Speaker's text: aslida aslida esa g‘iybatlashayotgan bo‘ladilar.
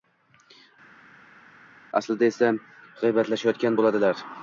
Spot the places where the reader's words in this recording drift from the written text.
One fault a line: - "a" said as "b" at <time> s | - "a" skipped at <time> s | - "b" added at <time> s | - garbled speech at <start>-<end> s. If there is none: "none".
- "aslida" skipped at 2.3 s